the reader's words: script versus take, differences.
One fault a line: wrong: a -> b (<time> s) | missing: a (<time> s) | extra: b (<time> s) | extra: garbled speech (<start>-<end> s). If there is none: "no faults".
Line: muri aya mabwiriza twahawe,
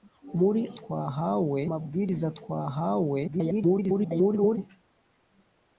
wrong: aya -> twahawe (0.8 s)
extra: garbled speech (3.3-4.6 s)